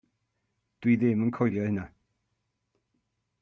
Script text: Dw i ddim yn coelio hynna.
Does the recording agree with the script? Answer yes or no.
yes